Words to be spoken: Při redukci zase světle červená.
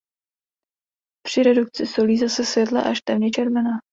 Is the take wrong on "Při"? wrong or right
right